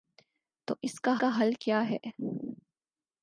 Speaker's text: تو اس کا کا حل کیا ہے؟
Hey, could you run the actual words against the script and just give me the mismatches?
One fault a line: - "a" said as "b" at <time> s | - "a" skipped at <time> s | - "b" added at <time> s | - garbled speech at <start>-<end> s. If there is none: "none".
none